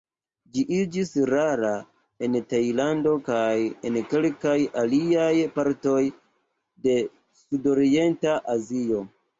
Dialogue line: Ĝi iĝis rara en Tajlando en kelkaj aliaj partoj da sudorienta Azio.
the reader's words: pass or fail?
fail